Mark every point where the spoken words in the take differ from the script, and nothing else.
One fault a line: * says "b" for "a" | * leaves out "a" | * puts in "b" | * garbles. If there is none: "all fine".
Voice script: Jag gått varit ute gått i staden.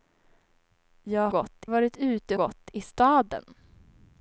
all fine